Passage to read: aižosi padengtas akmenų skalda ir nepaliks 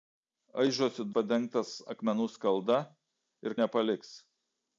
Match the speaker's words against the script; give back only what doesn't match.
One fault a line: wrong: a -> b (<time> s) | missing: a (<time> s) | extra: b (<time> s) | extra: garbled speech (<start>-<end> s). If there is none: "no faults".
no faults